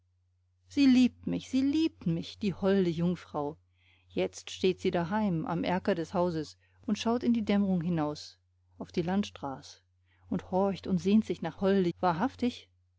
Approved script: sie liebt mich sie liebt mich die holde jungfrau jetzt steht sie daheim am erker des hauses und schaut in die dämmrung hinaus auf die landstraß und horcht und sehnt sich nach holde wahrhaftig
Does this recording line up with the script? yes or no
yes